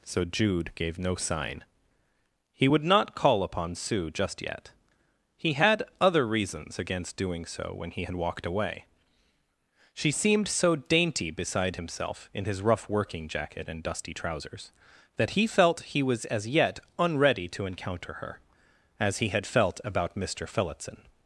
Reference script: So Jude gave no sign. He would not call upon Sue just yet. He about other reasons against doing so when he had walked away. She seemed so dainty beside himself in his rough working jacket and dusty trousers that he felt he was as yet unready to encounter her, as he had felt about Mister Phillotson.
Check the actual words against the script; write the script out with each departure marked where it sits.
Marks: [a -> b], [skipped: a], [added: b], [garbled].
So Jude gave no sign. He would not call upon Sue just yet. He [about -> had] other reasons against doing so when he had walked away. She seemed so dainty beside himself in his rough working jacket and dusty trousers that he felt he was as yet unready to encounter her, as he had felt about Mister Phillotson.